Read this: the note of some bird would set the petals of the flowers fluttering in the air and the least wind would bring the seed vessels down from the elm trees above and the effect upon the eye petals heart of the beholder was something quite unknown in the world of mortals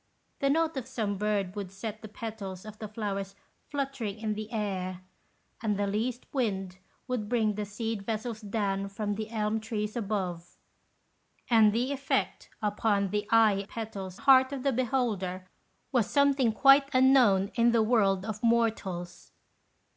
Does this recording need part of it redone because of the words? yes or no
no